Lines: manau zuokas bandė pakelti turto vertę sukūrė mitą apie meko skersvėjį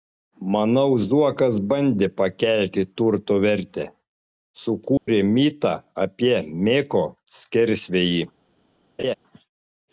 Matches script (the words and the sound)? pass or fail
fail